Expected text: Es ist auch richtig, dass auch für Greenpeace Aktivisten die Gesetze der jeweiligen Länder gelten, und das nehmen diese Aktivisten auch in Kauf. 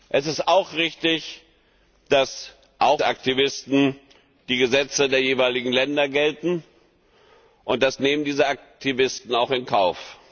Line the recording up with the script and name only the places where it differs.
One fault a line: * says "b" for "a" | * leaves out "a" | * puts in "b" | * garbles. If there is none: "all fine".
* leaves out "für Greenpeace"